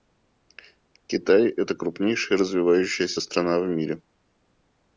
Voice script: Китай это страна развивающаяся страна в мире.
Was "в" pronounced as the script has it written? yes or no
yes